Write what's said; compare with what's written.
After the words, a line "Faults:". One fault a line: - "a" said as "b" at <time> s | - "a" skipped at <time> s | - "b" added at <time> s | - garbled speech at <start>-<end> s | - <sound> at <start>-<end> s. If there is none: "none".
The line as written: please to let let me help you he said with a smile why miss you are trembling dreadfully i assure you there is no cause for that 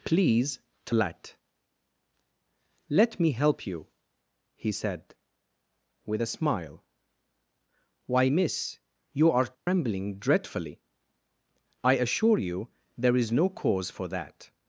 please to let let me help you he said with a smile why miss you are trembling dreadfully i assure you there is no cause for that
Faults:
- dropout at 9.5-9.7 s